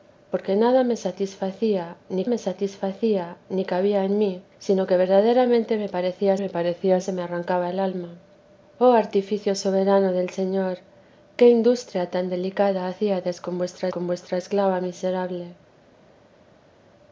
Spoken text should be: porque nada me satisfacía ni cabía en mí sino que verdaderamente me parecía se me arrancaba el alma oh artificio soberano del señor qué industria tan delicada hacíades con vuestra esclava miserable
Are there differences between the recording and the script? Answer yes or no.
yes